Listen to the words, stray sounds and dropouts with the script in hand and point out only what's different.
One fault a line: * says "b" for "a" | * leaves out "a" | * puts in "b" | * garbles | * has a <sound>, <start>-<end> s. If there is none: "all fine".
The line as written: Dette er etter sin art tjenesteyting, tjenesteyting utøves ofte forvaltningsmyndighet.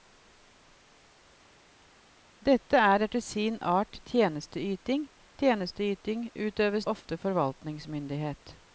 all fine